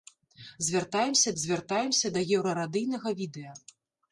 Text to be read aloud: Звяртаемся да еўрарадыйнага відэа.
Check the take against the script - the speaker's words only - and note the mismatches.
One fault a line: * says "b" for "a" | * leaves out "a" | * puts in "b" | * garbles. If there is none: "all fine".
* puts in "звяртаемся"